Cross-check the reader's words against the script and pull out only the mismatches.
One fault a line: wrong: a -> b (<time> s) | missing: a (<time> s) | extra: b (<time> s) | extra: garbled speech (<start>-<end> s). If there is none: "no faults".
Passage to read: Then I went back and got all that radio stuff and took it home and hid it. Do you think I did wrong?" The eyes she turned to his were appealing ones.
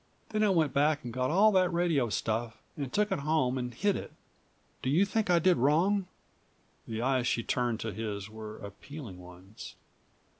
no faults